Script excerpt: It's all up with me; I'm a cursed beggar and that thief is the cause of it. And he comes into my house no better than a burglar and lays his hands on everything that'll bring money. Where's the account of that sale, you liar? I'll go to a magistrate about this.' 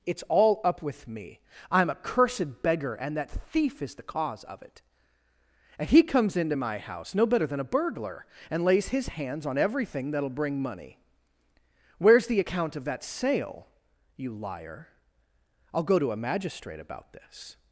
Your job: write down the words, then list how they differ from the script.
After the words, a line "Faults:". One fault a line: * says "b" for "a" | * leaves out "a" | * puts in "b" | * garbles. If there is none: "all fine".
It's all up with me; I'm a cursed beggar and that thief is the cause of it. And he comes into my house no better than a burglar and lays his hands on everything that'll bring money. Where's the account of that sale, you liar? I'll go to a magistrate about this.'
Faults:
all fine